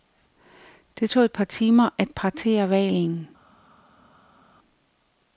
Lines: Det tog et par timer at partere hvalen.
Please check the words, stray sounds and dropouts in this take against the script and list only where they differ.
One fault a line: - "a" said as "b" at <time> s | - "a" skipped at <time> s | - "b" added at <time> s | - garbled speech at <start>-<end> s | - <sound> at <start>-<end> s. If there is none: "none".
none